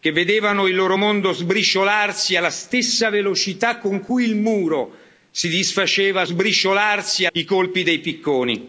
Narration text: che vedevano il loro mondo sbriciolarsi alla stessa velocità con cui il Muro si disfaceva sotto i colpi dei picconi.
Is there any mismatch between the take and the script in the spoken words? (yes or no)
yes